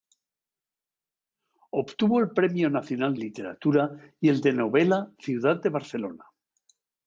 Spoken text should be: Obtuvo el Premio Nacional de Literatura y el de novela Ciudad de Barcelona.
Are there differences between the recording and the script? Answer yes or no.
yes